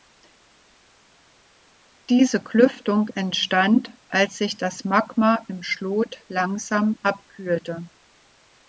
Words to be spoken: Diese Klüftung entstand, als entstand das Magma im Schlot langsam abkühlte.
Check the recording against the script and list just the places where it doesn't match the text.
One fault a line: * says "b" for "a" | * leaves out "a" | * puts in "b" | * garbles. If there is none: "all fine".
* says "sich" for "entstand"